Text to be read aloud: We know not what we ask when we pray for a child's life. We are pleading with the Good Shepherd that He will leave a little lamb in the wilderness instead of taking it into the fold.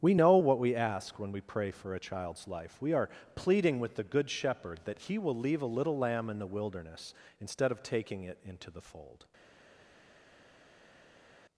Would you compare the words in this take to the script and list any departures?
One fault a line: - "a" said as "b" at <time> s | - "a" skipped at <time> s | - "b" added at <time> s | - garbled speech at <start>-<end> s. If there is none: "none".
- "not" skipped at 0.4 s